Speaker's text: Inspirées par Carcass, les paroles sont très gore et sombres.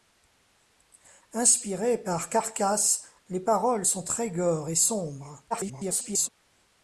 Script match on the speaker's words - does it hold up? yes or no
no